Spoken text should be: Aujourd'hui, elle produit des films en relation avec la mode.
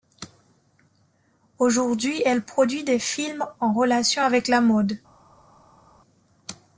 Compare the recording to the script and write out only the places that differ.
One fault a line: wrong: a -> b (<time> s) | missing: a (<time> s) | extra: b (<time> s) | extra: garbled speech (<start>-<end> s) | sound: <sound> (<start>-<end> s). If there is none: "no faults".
no faults